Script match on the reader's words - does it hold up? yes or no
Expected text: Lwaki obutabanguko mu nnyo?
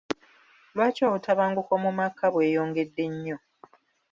no